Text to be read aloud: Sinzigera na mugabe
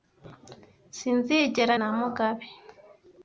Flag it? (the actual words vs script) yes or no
no